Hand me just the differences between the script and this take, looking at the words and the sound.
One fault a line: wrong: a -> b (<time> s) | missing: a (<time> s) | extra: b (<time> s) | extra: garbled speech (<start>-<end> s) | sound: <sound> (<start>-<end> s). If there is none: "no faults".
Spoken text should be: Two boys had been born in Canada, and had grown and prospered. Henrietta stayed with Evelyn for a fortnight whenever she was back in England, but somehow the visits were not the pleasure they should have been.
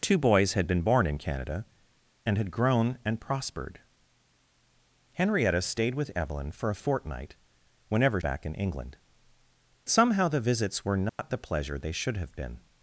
missing: she was (8.2 s)
missing: but (9.0 s)
sound: dropout (11.1-11.2 s)